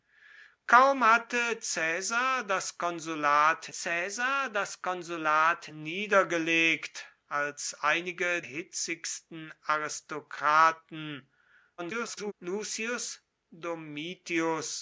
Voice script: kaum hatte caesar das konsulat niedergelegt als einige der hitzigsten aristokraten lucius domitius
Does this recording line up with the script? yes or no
no